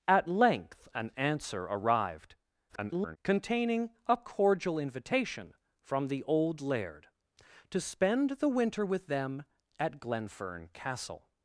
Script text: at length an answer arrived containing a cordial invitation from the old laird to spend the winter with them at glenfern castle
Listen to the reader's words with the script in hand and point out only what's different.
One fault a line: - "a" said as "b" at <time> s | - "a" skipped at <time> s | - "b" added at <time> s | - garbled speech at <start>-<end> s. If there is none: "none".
- garbled speech at 2.7-3.2 s